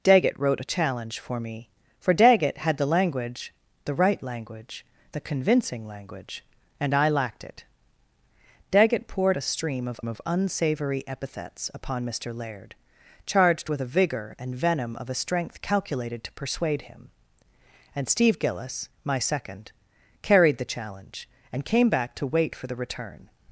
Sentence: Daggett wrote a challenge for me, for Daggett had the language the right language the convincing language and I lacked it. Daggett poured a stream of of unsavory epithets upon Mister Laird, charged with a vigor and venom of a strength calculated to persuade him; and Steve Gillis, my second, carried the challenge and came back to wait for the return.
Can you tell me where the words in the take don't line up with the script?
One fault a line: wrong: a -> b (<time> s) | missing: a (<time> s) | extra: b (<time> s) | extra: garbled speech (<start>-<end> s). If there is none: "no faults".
no faults